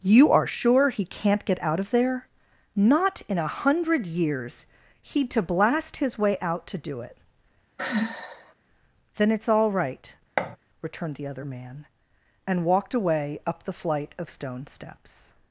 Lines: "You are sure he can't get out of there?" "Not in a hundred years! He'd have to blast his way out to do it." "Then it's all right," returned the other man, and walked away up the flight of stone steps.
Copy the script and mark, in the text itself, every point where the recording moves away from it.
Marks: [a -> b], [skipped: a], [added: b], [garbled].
"You are sure he can't get out of there?" "Not in a hundred years! He'd [skipped: have] to blast his way out to do it." "Then it's all right," returned the other man, and walked away up the flight of stone steps.